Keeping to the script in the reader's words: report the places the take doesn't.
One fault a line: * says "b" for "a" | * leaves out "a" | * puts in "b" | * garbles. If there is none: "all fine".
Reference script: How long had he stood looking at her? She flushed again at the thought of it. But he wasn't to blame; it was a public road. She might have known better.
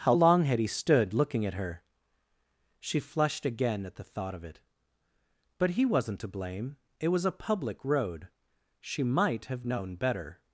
all fine